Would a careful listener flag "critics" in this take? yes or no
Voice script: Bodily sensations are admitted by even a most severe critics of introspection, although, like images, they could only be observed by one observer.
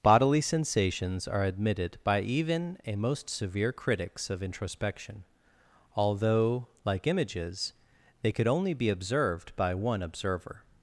no